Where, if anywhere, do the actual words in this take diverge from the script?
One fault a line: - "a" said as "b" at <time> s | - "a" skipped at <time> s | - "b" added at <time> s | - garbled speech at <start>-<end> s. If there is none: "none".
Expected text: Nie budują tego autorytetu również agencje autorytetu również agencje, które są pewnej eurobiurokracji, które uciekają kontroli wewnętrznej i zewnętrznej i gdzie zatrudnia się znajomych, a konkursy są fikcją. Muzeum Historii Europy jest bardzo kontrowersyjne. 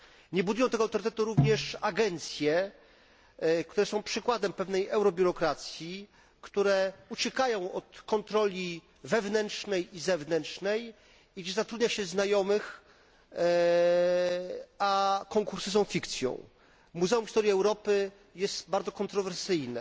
- "autorytetu również agencje" skipped at 2.7 s
- "przykładem" added at 4.0 s
- "od" added at 7.7 s